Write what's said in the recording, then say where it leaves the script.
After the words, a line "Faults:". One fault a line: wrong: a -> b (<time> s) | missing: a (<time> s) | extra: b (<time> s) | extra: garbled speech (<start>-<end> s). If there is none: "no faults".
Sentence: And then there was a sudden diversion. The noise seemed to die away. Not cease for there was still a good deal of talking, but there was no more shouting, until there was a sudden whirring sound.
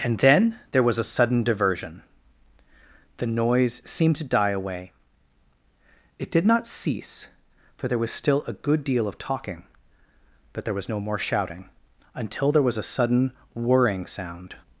And then there was a sudden diversion. The noise seemed to die away. It did not cease for there was still a good deal of talking, but there was no more shouting, until there was a sudden whirring sound.
Faults:
extra: It did (6.2 s)